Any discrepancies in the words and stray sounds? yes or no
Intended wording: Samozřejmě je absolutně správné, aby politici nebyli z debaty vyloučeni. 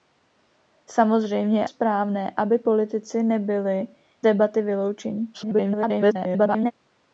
yes